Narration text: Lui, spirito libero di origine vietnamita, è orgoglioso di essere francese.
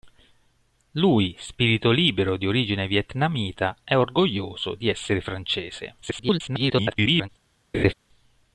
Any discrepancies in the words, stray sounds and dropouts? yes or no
yes